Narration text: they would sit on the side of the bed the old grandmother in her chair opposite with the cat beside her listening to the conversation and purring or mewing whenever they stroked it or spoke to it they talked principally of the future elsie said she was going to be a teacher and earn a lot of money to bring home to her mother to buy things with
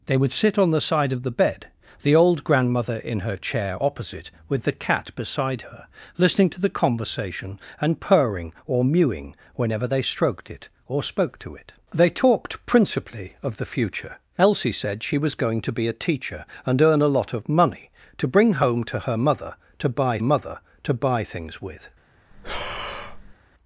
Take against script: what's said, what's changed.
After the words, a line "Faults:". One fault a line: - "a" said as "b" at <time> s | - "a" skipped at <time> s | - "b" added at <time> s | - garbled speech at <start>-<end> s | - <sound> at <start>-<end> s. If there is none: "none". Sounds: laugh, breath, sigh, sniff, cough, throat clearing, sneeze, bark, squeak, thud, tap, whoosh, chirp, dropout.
they would sit on the side of the bed the old grandmother in her chair opposite with the cat beside her listening to the conversation and purring or mewing whenever they stroked it or spoke to it they talked principally of the future elsie said she was going to be a teacher and earn a lot of money to bring home to her mother to buy mother to buy things with
Faults:
- "mother to buy" added at 20.2 s
- breath at 22.3-23.4 s